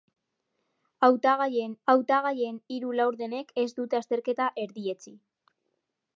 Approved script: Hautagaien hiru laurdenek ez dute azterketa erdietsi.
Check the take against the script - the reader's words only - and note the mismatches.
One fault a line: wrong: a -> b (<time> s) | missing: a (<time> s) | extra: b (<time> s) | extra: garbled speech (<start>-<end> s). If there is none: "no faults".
extra: hautagaien (1.9 s)